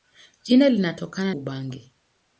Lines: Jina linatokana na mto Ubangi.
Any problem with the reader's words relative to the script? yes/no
yes